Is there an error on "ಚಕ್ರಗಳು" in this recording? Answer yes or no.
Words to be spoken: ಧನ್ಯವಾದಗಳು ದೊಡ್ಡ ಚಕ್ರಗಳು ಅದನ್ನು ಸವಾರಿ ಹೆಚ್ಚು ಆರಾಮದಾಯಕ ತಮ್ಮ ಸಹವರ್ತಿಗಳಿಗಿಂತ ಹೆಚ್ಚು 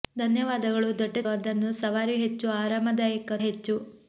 yes